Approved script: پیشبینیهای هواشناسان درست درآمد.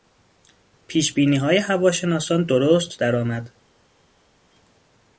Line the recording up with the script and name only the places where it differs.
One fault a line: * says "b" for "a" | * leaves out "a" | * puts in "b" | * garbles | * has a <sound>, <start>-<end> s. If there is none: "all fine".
all fine